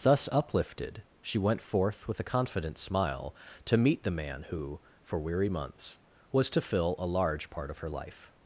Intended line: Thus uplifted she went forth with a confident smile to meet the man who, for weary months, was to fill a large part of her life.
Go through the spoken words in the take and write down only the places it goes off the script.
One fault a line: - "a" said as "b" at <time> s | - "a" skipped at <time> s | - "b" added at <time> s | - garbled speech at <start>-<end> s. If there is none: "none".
none